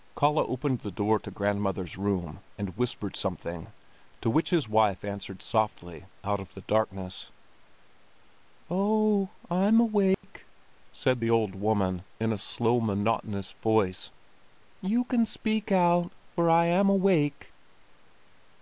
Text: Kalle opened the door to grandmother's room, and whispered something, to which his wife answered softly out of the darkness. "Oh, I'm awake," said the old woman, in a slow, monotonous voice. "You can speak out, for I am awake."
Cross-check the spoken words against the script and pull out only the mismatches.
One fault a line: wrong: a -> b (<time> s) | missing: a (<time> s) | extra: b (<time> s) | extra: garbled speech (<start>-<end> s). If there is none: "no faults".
no faults